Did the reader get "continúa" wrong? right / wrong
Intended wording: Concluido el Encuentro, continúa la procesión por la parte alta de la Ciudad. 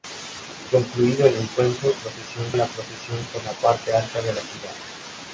wrong